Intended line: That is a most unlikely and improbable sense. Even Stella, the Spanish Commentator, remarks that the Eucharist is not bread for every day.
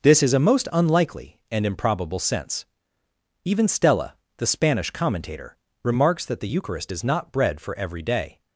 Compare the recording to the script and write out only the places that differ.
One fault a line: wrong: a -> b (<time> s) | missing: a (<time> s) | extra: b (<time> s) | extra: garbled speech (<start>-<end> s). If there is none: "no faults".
wrong: That -> This (0.0 s)